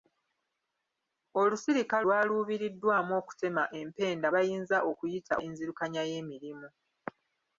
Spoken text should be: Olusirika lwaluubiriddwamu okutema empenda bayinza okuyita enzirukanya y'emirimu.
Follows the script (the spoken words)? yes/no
yes